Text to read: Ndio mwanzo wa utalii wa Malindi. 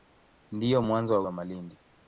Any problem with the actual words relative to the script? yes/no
yes